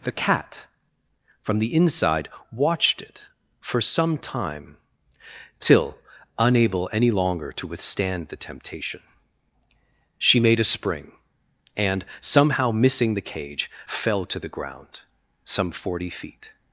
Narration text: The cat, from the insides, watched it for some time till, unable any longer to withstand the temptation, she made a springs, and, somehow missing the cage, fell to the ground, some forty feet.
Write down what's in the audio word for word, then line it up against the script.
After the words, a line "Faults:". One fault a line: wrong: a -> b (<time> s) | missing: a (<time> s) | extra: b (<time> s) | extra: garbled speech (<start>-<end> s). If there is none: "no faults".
The cat, from the inside, watched it for some time till, unable any longer to withstand the temptation, she made a spring, and, somehow missing the cage, fell to the ground, some forty feet.
Faults:
wrong: insides -> inside (1.8 s)
wrong: springs -> spring (10.6 s)